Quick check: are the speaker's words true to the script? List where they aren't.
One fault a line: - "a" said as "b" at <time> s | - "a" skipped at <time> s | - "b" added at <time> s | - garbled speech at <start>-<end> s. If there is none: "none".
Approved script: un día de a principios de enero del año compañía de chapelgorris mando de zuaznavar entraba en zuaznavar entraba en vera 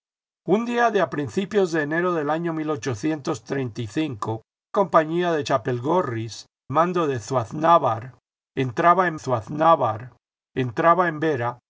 none